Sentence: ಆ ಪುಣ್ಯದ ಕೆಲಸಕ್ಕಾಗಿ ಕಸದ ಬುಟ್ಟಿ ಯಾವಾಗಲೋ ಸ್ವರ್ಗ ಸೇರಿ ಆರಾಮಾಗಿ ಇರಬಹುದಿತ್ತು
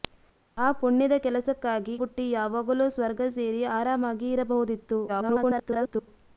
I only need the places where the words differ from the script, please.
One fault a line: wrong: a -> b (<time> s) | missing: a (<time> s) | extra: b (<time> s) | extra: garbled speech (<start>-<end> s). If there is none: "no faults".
missing: ಕಸದ (2.0 s)
extra: garbled speech (5.1-6.1 s)